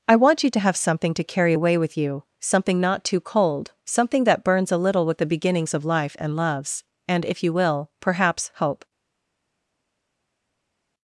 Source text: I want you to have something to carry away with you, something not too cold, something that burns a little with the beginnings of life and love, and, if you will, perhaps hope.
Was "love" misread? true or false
true